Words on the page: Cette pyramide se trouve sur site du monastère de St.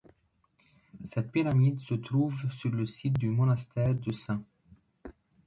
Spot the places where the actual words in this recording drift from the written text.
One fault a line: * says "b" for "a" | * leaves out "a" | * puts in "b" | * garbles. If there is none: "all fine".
* puts in "le"